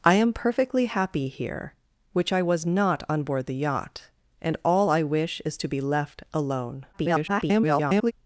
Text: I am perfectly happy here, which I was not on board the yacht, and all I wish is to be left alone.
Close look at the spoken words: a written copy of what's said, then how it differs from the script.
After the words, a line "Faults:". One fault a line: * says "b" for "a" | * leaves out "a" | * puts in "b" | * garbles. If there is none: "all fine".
I am perfectly happy here, which I was not on board the yacht, and all I wish is to be left alone. [garbled]
Faults:
* garbles